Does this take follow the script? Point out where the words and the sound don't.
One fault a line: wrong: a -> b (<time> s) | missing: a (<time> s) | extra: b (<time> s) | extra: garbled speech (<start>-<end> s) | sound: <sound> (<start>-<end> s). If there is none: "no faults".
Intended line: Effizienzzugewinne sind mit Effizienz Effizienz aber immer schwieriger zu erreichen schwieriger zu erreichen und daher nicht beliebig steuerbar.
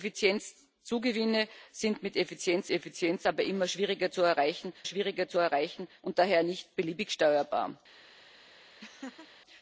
sound: laugh (8.8-9.3 s)